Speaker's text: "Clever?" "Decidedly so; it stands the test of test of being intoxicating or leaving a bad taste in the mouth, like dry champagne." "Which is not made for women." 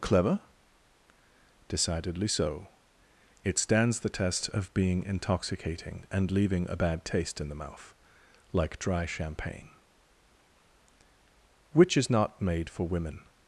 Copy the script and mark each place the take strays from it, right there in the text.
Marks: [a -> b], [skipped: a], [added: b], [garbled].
"Clever?" "Decidedly so; it stands the test of [skipped: test of] being intoxicating [or -> and] leaving a bad taste in the mouth, like dry champagne." "Which is not made for women."